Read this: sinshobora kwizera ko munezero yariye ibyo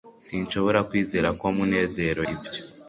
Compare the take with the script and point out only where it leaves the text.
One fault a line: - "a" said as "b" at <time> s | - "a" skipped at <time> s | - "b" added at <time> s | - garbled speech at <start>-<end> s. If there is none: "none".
- "yariye" skipped at 2.2 s